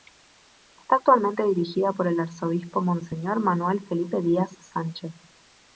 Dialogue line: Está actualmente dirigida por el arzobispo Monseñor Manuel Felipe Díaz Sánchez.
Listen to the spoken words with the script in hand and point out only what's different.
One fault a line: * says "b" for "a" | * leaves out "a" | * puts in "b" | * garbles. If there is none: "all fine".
all fine